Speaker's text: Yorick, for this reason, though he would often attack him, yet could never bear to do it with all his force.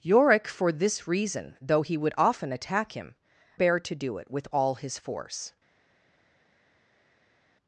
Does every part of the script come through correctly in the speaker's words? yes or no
no